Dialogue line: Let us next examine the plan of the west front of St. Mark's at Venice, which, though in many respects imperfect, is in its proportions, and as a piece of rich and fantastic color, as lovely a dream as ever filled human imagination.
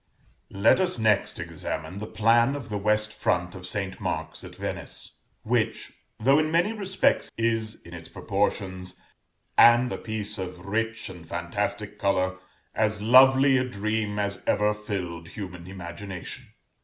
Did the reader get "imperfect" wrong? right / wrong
wrong